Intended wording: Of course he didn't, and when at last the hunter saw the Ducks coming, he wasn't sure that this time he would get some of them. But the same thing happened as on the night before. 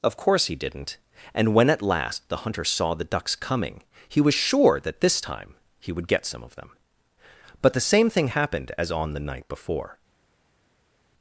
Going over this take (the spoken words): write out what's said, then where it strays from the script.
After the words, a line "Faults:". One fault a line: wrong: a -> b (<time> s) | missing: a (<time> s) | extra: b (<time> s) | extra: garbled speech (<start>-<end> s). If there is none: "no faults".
Of course he didn't, and when at last the hunter saw the Ducks coming, he was sure that this time he would get some of them. But the same thing happened as on the night before.
Faults:
wrong: wasn't -> was (4.2 s)